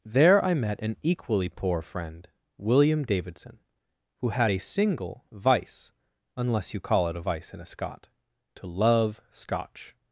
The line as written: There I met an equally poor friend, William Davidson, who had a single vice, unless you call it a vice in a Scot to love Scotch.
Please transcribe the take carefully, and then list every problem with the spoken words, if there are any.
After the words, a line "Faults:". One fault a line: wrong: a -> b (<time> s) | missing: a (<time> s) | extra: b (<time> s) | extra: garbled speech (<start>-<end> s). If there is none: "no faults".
There I met an equally poor friend, William Davidson, who had a single vice, unless you call it a vice in a Scot to love Scotch.
Faults:
no faults